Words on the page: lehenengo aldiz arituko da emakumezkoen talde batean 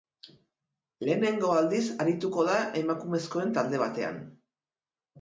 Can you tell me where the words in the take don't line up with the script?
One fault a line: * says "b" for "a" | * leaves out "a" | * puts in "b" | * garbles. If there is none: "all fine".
all fine